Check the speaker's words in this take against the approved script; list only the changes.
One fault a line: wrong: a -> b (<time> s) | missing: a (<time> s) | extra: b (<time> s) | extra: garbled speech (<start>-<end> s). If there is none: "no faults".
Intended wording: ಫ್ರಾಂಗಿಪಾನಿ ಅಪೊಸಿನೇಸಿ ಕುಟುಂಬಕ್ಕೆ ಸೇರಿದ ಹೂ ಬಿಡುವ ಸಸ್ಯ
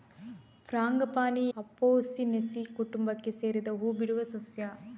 no faults